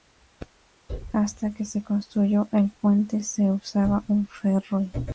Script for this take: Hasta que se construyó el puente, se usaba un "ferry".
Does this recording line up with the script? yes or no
yes